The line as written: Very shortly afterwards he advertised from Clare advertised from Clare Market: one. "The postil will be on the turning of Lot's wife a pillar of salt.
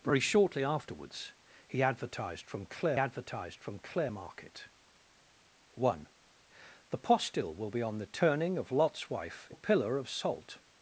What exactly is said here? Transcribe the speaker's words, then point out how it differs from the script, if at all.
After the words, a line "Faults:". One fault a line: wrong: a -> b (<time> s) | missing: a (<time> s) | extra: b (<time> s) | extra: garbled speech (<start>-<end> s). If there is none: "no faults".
Very shortly afterwards he advertised from Clare advertised from Clare Market: one. "The postil will be on the turning of Lot's wife a pillar of salt.
Faults:
no faults